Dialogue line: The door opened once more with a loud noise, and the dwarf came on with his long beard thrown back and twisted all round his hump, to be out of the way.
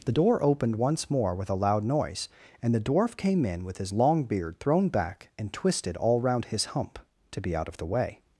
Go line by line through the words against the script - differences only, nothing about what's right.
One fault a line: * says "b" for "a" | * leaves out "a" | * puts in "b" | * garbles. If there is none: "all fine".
* says "in" for "on"